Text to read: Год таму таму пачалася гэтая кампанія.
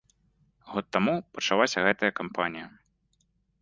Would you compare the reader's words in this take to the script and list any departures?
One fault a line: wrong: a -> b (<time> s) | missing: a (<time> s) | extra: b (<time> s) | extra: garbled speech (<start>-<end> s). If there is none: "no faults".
missing: таму (1.1 s)